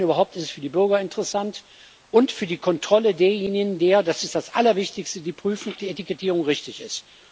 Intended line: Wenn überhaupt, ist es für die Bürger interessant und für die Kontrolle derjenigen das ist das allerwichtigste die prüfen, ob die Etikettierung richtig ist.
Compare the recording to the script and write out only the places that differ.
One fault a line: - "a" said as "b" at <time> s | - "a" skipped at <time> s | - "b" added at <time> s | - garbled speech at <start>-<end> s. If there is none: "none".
- "ob" skipped at 5.8 s